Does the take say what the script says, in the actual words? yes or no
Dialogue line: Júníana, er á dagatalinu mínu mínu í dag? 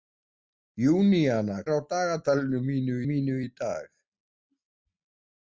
yes